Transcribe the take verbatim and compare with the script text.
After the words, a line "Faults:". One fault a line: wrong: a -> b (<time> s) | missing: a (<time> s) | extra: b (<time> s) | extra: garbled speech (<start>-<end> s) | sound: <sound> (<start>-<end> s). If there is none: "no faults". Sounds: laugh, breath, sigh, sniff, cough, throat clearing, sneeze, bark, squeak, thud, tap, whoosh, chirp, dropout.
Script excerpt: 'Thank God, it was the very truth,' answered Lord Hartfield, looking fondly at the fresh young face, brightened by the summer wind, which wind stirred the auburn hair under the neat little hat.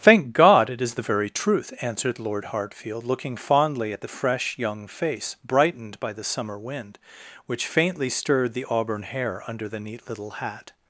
'Thank God, it is the very truth,' answered Lord Hartfield, looking fondly at the fresh young face, brightened by the summer wind, which faintly stirred the auburn hair under the neat little hat.
Faults:
wrong: was -> is (0.8 s)
wrong: wind -> faintly (7.7 s)